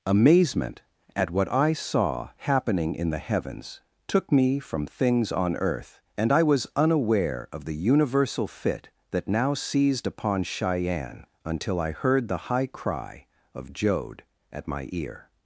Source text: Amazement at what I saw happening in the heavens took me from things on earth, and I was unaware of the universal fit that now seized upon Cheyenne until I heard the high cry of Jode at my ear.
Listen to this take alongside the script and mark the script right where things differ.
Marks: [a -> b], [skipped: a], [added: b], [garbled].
Amazement at what I saw happening in the heavens took me from things on earth, and I was unaware of the universal fit that now seized upon Cheyenne until I heard the high cry of Jode at my ear.